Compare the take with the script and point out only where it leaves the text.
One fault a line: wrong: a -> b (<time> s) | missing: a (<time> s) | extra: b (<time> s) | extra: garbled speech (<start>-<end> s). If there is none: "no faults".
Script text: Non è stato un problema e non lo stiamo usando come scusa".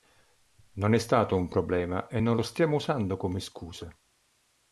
no faults